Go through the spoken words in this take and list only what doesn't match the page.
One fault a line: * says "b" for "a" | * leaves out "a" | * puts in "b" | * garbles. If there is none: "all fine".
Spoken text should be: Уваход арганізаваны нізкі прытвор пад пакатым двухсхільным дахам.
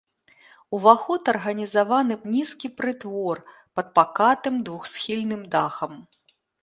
all fine